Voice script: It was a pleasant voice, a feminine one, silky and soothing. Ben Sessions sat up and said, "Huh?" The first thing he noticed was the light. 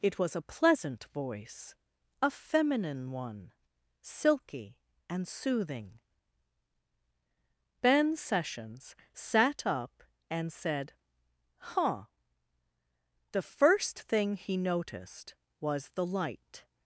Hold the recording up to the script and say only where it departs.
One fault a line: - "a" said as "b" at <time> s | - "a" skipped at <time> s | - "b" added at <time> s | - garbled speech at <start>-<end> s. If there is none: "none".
none